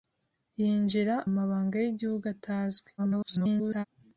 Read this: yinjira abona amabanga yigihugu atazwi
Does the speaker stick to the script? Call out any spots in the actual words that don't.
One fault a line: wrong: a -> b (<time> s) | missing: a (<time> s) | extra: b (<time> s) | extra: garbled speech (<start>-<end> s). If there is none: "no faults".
missing: abona (1.1 s)
extra: garbled speech (3.0-3.9 s)